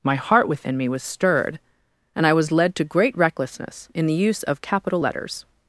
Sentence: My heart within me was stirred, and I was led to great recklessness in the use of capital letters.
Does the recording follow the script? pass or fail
pass